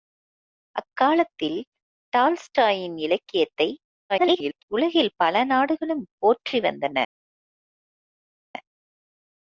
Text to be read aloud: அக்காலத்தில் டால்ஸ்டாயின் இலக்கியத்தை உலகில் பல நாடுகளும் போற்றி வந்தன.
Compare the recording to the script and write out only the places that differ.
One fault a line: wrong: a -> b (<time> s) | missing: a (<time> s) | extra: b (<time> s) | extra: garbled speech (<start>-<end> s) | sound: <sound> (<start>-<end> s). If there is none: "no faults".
extra: garbled speech (4.1-4.6 s)